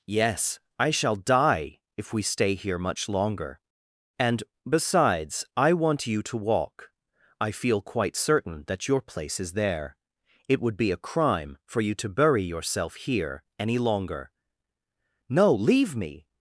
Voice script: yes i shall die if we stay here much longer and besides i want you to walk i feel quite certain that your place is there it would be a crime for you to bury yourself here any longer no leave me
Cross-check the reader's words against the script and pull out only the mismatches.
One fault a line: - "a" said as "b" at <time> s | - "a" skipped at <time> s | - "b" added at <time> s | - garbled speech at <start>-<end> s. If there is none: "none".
none